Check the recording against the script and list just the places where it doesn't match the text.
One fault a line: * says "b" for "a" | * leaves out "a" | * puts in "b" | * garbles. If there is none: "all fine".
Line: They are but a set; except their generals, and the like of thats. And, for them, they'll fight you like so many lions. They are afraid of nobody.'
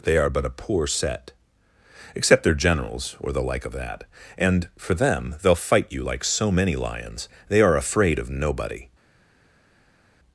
* puts in "poor"
* says "or" for "and"
* says "that" for "thats"